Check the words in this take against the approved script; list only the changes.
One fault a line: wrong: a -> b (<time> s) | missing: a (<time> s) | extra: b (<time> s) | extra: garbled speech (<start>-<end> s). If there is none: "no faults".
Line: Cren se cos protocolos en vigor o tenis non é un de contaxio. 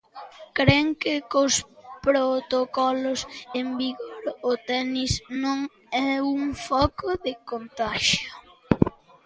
wrong: se -> que (1.0 s)
extra: foco (6.7 s)